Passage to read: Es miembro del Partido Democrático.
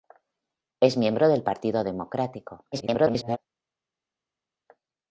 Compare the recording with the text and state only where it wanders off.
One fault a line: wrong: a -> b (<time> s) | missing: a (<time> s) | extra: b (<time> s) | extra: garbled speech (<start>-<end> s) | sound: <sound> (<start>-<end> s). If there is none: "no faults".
extra: garbled speech (2.7-3.4 s)